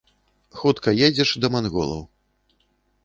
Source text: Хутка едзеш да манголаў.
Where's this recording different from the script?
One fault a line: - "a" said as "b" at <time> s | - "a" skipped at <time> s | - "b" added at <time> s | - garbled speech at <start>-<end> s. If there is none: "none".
none